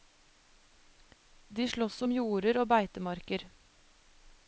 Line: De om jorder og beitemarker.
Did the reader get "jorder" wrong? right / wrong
right